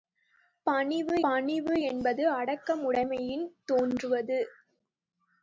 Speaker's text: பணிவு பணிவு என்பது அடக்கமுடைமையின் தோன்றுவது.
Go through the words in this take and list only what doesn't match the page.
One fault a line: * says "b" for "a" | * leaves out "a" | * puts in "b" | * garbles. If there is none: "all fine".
all fine